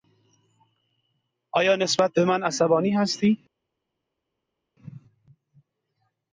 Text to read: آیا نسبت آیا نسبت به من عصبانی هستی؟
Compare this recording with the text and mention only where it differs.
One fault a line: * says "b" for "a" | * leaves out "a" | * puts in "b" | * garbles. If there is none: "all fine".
* leaves out "آیا نسبت"